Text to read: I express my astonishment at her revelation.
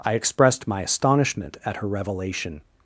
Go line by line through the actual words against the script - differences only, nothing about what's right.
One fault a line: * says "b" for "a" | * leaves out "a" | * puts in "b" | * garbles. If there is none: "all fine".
* says "expressed" for "express"